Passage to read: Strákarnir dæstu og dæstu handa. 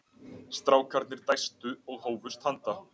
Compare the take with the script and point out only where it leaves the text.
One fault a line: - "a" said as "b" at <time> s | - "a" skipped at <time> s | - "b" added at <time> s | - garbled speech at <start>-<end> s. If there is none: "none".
- "dæstu" said as "hófust" at 2.0 s